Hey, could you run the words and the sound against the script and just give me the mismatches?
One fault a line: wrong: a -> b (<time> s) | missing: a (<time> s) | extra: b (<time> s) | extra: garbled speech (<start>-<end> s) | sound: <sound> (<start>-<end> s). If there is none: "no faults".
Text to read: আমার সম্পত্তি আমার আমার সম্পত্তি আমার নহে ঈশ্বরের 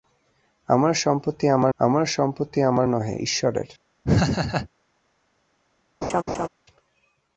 sound: laugh (4.0-4.7 s)
sound: laugh (6.0-6.5 s)